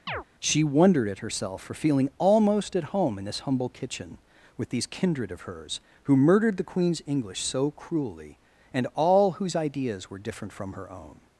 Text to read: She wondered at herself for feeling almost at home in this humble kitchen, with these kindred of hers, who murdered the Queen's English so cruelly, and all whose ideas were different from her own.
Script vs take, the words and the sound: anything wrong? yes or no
yes